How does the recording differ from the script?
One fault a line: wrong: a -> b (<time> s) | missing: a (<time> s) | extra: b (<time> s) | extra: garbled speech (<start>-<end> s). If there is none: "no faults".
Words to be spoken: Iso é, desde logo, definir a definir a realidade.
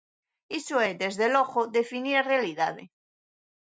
missing: definir a (2.3 s)